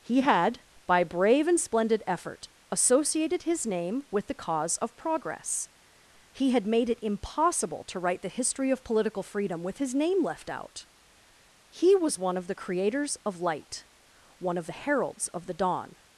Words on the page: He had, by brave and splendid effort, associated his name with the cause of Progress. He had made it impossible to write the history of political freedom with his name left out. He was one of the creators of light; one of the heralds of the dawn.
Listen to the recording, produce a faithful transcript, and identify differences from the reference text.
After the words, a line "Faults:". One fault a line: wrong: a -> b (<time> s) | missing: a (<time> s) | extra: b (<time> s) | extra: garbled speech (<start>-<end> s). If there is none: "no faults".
He had, by brave and splendid effort, associated his name with the cause of Progress. He had made it impossible to write the history of political freedom with his name left out. He was one of the creators of light; one of the heralds of the dawn.
Faults:
no faults